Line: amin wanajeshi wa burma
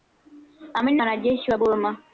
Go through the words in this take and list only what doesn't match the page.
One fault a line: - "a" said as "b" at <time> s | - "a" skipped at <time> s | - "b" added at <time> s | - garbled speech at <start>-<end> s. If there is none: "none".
none